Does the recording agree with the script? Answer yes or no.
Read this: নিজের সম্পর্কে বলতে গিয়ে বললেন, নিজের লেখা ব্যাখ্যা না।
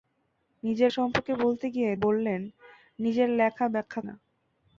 yes